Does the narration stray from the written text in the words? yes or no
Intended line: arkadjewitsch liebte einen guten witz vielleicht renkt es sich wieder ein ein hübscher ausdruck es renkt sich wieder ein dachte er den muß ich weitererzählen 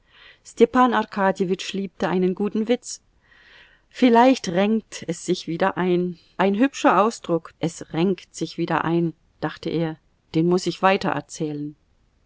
no